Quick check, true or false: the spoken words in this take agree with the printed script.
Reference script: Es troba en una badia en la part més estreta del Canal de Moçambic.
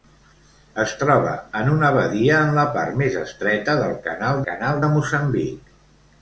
false